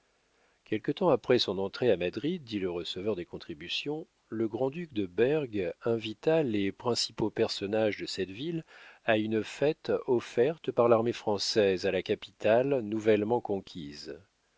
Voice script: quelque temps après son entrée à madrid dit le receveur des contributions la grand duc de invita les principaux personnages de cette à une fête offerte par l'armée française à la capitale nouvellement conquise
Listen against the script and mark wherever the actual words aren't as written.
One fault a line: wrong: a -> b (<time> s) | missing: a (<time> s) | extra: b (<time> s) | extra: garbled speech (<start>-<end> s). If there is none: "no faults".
wrong: la -> le (4.3 s)
extra: berg (5.1 s)
extra: ville (8.3 s)